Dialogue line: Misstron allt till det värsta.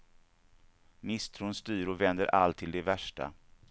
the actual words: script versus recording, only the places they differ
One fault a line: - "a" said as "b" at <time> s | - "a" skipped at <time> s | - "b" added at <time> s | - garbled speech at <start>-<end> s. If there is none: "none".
- "styr och vänder" added at 1.5 s